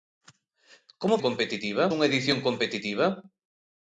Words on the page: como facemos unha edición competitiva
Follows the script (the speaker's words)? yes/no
no